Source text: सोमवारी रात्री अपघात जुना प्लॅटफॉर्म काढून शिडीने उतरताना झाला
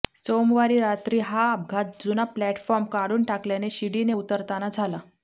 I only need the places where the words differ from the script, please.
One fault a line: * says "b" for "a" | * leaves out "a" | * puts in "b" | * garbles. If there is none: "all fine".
* puts in "हा"
* puts in "टाकल्याने"